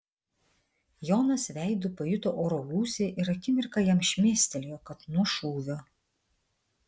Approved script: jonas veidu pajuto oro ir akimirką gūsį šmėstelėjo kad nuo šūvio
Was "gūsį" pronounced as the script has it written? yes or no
no